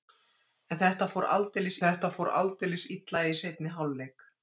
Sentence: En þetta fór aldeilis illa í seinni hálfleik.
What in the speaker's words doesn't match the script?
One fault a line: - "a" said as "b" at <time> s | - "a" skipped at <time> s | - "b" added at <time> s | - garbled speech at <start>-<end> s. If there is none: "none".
- "þetta fór aldeilis" added at 1.8 s